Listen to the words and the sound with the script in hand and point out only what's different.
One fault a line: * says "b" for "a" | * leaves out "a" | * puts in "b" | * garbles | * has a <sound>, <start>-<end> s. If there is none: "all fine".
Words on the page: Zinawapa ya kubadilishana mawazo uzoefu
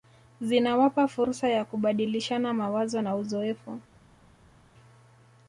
* puts in "fursa"
* puts in "na"